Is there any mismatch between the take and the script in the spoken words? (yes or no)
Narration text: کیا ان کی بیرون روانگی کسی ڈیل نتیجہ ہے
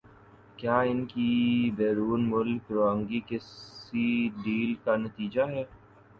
yes